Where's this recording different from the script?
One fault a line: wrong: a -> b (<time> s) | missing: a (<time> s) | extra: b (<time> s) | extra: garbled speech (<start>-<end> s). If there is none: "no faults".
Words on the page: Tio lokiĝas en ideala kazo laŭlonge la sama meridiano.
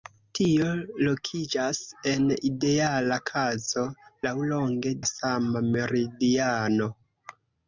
no faults